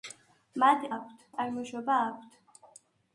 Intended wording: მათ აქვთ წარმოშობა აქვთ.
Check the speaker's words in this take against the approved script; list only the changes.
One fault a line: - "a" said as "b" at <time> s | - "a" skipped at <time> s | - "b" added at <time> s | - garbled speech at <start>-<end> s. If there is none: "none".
none